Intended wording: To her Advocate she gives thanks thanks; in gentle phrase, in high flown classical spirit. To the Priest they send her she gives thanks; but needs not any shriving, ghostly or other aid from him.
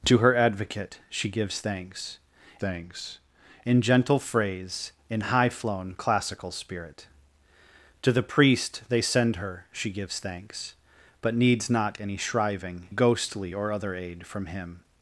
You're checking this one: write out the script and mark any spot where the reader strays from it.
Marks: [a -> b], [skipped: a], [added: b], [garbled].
To her Advocate she gives thanks thanks; in gentle phrase, in high flown classical spirit. To the Priest they send her she gives thanks; but needs not any shriving, ghostly or other aid from him.